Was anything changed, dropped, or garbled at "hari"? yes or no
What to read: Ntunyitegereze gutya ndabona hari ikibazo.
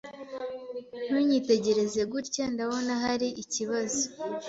no